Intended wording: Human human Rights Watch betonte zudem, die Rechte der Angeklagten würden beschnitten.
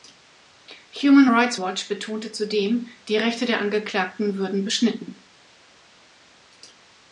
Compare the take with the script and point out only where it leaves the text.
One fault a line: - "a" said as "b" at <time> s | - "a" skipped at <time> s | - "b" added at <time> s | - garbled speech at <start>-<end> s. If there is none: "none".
- "human" skipped at 1.3 s